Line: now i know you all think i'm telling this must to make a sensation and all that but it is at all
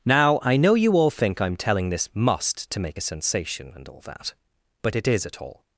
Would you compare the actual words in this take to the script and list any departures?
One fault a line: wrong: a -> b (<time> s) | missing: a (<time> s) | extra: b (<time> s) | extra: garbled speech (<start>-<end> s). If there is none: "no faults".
no faults